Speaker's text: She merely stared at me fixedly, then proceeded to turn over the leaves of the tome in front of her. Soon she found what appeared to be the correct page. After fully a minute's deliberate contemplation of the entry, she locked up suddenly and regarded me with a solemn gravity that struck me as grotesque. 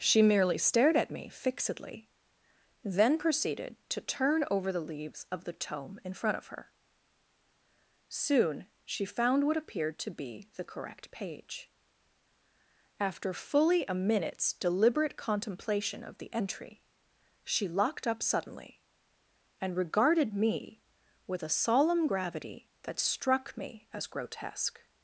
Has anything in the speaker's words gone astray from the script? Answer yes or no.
no